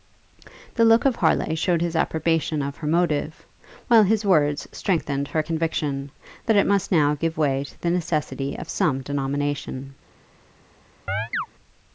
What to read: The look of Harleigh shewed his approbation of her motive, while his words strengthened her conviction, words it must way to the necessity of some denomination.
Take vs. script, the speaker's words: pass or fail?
fail